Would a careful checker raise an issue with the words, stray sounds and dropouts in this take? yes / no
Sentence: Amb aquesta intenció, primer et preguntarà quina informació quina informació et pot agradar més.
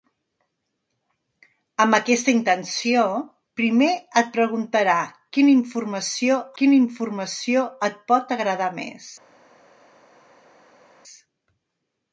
no